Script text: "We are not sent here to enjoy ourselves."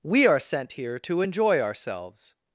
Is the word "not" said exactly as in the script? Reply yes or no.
no